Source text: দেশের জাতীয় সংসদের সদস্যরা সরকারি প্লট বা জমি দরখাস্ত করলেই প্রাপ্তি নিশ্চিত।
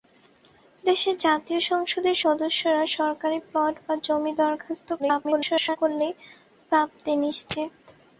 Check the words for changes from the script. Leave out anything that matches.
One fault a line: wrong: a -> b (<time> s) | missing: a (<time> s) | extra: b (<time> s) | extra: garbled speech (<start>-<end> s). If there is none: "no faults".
extra: garbled speech (5.0-5.8 s)